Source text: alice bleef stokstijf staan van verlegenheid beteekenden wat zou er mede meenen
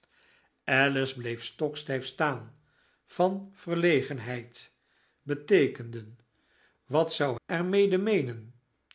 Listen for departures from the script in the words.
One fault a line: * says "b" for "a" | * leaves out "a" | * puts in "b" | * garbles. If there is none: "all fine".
all fine